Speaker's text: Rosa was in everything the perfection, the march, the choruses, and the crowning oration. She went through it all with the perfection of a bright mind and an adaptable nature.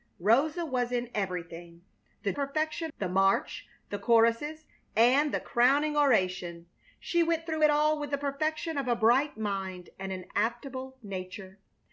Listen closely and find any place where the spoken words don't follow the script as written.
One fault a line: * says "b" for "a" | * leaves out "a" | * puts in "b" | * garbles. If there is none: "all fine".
all fine